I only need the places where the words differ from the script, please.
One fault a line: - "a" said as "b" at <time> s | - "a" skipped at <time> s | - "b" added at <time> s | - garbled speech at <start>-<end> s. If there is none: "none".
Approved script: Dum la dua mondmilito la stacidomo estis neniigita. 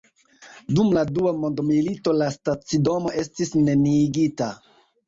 none